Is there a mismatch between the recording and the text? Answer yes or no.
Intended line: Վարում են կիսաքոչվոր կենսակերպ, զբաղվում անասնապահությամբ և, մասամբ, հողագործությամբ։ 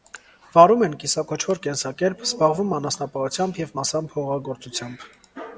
no